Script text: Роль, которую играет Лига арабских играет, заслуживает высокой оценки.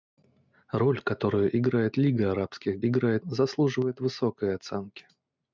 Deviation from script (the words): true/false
false